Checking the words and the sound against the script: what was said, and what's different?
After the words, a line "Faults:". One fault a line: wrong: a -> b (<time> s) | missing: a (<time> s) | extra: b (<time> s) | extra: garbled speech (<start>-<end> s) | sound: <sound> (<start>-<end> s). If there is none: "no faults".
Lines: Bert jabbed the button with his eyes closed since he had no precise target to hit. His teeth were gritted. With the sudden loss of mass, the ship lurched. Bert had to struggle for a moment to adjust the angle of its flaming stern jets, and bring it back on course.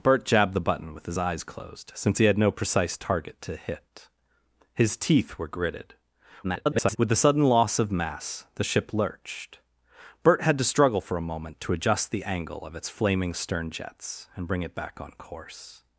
Bert jabbed the button with his eyes closed since he had no precise target to hit. His teeth were gritted. [garbled] With the sudden loss of mass, the ship lurched. Bert had to struggle for a moment to adjust the angle of its flaming stern jets, and bring it back on course.
Faults:
extra: garbled speech (6.4-7.0 s)